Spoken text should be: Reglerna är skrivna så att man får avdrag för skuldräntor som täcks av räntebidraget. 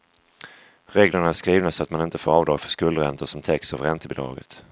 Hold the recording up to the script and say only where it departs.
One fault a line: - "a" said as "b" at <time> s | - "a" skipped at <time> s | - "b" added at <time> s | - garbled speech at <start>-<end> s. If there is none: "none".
- "inte" added at 2.0 s